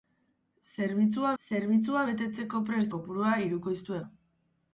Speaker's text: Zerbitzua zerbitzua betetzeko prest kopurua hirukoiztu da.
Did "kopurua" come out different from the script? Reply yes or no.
no